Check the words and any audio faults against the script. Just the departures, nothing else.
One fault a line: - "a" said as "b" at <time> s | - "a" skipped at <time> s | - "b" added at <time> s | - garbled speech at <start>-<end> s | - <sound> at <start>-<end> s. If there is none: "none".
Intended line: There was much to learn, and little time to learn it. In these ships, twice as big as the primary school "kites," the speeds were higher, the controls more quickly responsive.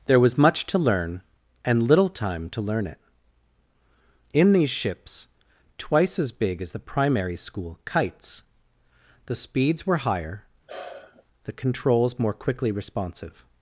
- sigh at 10.7-11.2 s